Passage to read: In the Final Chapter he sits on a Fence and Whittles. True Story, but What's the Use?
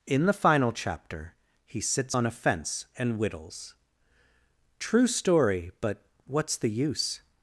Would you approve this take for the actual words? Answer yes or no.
yes